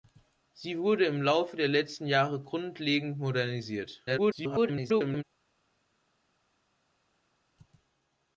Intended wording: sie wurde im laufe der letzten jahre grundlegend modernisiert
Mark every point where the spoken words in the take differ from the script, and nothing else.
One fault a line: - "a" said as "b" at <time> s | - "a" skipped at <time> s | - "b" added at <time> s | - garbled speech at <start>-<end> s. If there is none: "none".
- garbled speech at 4.1-5.2 s